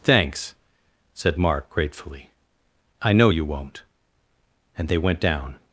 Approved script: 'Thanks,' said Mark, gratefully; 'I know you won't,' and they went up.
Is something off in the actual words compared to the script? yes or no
yes